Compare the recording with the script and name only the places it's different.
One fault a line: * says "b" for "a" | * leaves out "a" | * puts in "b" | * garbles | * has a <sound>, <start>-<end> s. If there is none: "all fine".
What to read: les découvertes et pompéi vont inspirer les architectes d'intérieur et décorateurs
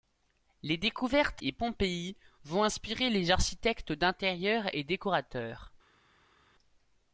all fine